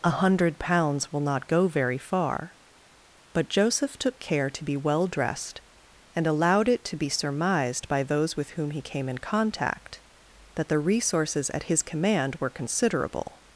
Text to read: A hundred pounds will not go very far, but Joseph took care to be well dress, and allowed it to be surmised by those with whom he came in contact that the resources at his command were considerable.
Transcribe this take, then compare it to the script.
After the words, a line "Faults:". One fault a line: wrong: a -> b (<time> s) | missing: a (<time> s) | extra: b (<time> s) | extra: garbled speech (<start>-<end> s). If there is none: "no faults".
A hundred pounds will not go very far, but Joseph took care to be well dressed, and allowed it to be surmised by those with whom he came in contact that the resources at his command were considerable.
Faults:
wrong: dress -> dressed (5.0 s)